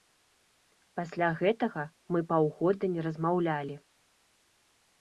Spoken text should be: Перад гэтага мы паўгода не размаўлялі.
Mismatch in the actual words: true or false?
true